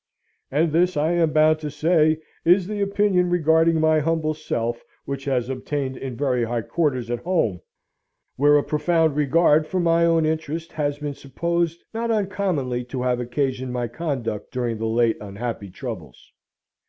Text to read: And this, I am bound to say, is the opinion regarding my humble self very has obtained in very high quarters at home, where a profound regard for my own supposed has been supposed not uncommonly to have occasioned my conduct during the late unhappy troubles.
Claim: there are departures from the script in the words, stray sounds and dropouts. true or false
true